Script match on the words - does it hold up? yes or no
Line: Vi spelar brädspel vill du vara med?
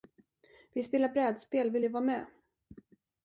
yes